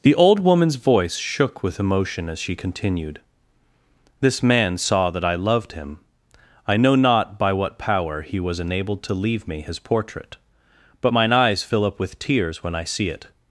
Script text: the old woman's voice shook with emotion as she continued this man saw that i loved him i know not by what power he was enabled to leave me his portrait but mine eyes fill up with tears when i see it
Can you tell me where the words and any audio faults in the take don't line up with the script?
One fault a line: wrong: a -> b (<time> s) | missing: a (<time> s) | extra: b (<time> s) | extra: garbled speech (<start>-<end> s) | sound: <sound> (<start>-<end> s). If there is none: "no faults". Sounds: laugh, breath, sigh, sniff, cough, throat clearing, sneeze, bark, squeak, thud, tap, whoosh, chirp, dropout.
no faults